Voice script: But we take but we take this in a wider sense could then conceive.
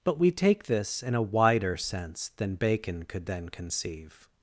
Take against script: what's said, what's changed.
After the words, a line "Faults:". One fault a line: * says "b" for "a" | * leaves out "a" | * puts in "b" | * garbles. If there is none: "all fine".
But we take this in a wider sense than Bacon could then conceive.
Faults:
* leaves out "but we take"
* puts in "than Bacon"